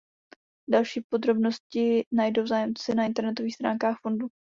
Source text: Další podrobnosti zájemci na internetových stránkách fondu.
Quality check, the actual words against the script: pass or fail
fail